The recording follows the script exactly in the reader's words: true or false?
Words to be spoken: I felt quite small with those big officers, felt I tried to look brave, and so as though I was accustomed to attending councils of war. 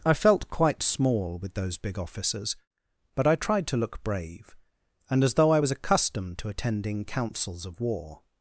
false